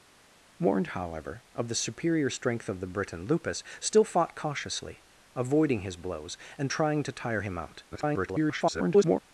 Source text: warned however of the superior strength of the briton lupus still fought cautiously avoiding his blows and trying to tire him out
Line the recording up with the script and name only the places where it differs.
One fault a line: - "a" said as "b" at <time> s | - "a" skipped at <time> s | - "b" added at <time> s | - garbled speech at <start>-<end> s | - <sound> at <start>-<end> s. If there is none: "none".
- garbled speech at 7.9-9.2 s